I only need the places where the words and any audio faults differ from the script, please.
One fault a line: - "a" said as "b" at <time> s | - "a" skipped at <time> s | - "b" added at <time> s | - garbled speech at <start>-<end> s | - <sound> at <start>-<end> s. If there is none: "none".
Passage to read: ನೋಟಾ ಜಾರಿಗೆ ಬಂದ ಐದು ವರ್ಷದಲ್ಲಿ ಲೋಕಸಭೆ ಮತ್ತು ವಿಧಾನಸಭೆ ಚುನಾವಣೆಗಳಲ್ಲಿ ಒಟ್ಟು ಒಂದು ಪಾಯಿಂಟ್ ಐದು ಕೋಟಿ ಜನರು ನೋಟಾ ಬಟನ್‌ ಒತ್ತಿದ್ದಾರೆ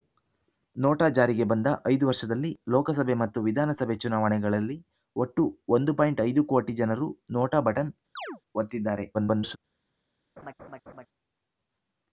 - chirp at 8.2-8.4 s
- garbled speech at 9.1-9.6 s
- laugh at 10.4-11.1 s